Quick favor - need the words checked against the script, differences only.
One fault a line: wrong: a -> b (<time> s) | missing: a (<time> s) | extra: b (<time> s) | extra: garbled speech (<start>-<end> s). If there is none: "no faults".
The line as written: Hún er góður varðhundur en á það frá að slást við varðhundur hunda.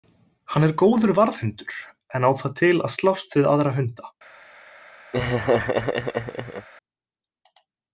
wrong: Hún -> Hann (0.5 s)
wrong: frá -> til (2.6 s)
wrong: varðhundur -> aðra (3.6 s)